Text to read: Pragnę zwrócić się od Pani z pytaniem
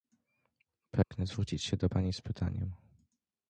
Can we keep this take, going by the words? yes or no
no